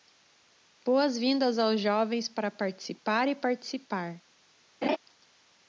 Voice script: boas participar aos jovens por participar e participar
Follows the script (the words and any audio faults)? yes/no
no